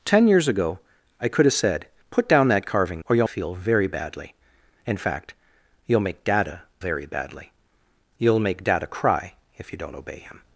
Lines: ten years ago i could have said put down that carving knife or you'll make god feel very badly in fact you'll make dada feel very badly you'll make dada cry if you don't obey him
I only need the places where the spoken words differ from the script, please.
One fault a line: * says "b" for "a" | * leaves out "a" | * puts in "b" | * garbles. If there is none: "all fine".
* leaves out "knife"
* leaves out "make god"
* leaves out "feel"